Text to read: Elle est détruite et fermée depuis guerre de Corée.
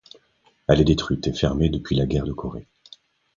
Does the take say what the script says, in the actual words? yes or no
no